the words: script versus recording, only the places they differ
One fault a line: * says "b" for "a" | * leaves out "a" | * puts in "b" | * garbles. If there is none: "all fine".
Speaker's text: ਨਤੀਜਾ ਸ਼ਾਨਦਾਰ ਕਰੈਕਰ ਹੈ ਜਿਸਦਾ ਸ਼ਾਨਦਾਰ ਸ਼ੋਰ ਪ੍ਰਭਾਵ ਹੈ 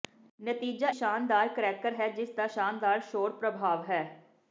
all fine